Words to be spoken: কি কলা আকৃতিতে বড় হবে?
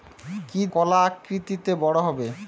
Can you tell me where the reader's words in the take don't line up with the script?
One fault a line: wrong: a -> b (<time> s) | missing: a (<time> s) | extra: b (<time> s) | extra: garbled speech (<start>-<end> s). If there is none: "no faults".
no faults